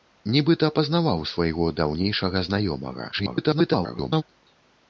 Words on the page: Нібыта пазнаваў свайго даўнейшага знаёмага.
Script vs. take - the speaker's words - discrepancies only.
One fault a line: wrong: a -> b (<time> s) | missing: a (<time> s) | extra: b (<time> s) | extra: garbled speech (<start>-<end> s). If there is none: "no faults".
extra: garbled speech (3.1-4.2 s)